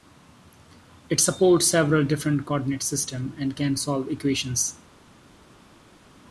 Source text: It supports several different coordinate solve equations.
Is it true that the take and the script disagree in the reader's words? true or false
true